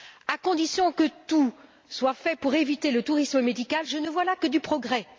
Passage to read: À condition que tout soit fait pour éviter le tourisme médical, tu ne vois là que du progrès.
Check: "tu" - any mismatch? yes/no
yes